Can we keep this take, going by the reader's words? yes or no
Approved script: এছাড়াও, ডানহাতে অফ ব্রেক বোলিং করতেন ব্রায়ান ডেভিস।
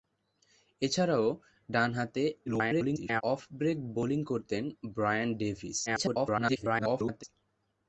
no